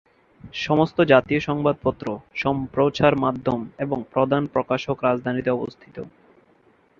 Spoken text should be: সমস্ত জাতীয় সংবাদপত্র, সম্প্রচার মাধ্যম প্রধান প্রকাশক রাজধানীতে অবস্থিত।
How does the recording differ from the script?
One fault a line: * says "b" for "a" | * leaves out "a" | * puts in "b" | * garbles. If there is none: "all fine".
* puts in "এবং"